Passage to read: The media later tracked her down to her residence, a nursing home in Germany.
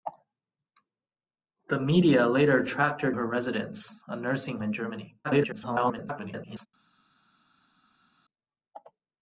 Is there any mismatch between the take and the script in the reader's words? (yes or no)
yes